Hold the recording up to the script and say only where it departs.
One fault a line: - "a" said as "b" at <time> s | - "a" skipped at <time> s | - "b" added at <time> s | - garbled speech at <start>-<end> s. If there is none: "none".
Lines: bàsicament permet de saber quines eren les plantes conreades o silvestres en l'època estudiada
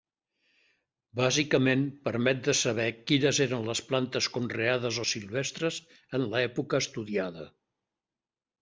none